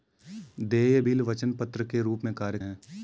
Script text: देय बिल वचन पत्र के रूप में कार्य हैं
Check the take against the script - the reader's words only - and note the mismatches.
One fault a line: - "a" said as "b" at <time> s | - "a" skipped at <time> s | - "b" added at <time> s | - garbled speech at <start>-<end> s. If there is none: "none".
none